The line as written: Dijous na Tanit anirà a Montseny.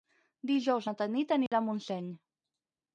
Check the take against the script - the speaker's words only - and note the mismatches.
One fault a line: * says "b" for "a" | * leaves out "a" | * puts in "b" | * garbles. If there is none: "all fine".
all fine